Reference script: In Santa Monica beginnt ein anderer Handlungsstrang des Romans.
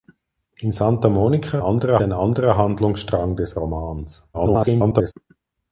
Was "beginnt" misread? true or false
true